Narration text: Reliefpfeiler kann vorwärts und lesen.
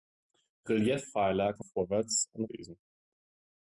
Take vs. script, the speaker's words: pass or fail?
pass